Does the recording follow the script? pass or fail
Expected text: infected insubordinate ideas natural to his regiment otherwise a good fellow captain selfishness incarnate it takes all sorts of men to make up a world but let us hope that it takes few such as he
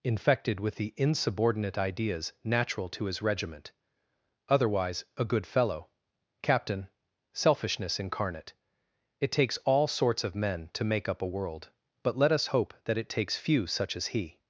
fail